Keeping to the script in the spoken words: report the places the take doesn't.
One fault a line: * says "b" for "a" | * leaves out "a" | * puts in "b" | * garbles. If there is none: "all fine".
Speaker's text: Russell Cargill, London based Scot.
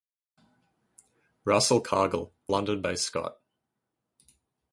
all fine